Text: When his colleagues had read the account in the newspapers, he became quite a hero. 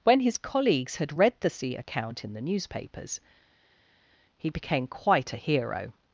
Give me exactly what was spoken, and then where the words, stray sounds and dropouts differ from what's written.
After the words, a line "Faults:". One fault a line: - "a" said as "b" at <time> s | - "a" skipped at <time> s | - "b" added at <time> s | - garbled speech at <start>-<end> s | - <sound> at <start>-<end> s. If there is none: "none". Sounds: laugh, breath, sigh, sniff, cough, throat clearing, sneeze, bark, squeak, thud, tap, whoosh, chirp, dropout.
When his colleagues had read the sea account in the newspapers, he became quite a hero.
Faults:
- "sea" added at 1.5 s